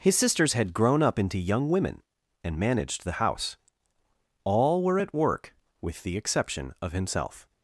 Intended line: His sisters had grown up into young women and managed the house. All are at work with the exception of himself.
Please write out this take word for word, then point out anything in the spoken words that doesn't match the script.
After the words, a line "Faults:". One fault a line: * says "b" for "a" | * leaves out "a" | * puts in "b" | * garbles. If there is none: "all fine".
His sisters had grown up into young women and managed the house. All were at work with the exception of himself.
Faults:
* says "were" for "are"